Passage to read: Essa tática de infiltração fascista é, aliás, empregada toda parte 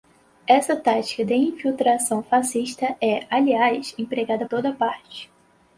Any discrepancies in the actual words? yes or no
no